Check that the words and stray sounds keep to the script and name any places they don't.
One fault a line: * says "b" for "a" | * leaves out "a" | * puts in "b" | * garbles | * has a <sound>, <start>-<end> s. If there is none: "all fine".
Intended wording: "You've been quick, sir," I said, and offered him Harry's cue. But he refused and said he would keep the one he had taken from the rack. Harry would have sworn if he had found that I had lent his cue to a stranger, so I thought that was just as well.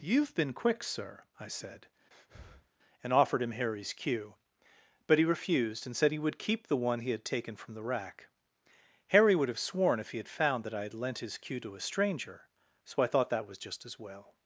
* has a breath, 2.1-2.7 s